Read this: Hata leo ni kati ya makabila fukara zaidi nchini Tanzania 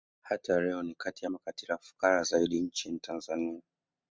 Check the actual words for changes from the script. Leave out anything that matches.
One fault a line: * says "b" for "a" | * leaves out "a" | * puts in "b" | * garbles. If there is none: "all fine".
all fine